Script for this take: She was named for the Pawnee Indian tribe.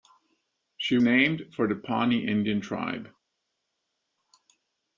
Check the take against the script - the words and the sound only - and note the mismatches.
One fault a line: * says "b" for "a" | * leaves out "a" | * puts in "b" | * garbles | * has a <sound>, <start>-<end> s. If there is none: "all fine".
* leaves out "was"